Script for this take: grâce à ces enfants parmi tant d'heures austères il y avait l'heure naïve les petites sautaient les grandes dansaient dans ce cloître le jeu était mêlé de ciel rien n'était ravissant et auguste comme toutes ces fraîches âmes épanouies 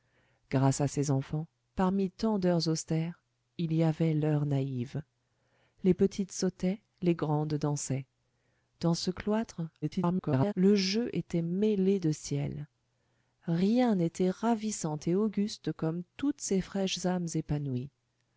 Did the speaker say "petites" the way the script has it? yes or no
yes